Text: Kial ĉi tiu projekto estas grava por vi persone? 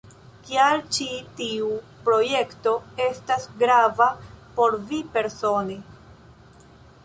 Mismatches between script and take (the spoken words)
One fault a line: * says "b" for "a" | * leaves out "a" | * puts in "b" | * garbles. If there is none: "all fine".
all fine